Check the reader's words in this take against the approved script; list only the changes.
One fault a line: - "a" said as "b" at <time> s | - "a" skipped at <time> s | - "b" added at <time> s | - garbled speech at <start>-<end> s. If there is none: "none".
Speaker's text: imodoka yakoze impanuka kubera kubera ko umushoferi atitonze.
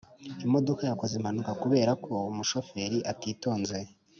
- "kubera" skipped at 1.9 s